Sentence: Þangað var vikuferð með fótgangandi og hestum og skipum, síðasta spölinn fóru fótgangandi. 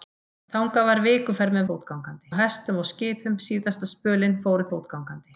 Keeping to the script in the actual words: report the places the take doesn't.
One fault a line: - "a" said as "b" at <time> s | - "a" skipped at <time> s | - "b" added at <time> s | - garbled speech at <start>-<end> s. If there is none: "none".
none